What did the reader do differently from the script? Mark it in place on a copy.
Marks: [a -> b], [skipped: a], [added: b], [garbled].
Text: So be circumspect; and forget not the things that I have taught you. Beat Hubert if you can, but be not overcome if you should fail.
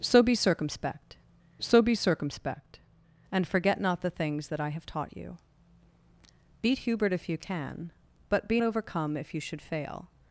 So be circumspect; [added: so be circumspect] and forget not the things that I have taught you. Beat Hubert if you can, but be [skipped: not] overcome if you should fail.